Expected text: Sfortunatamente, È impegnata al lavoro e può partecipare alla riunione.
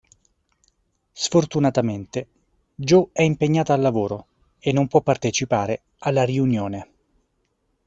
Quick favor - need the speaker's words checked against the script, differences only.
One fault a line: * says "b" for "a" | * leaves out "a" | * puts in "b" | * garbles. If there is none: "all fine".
* puts in "Jo"
* puts in "non"